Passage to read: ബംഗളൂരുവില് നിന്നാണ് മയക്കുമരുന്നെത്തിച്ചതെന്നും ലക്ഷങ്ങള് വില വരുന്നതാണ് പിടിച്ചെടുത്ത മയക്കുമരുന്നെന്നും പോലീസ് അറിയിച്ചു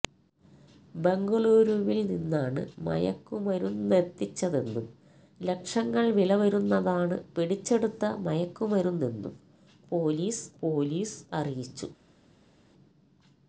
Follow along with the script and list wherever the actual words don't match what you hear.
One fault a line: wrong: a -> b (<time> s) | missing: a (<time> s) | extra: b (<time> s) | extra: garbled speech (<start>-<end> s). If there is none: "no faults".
extra: പോലീസ് (10.6 s)